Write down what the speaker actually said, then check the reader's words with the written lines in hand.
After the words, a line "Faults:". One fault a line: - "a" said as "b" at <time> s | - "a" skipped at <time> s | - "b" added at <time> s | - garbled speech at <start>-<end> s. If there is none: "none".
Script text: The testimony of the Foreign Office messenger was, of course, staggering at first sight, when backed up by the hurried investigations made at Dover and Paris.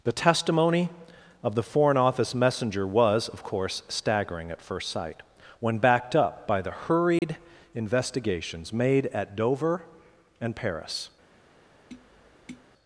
The testimony of the Foreign Office messenger was, of course, staggering at first sight, when backed up by the hurried investigations made at Dover and Paris.
Faults:
none